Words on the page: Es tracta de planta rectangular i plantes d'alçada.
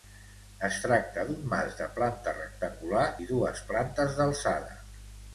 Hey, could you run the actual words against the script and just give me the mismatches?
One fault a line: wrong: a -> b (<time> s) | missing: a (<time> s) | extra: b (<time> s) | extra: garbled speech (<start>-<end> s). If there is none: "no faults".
extra: d'un mas (1.2 s)
extra: dues (3.3 s)